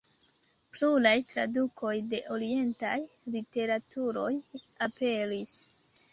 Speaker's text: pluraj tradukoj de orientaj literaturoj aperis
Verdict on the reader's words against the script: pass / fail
pass